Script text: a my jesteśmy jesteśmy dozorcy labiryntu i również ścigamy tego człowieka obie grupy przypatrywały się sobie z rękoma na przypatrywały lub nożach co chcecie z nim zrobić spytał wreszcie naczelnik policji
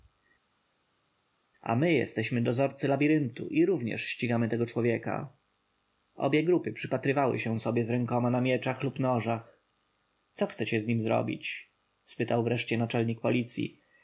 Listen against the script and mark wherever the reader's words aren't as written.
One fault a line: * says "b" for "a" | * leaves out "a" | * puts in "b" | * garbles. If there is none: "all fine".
* leaves out "jesteśmy"
* says "mieczach" for "przypatrywały"